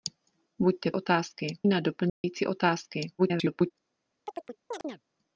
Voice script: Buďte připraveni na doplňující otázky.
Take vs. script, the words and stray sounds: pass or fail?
fail